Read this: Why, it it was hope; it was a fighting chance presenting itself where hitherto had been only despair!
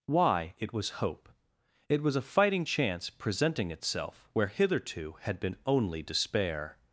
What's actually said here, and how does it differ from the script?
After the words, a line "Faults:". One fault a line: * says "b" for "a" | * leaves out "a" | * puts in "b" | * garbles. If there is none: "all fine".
Why, it was hope; it was a fighting chance presenting itself where hitherto had been only despair!
Faults:
* leaves out "it"